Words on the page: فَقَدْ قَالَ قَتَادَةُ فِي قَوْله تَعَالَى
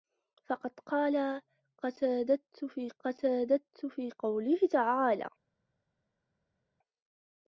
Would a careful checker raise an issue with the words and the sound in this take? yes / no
yes